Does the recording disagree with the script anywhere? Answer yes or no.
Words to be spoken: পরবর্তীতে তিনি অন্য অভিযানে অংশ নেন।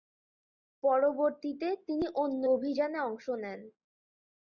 no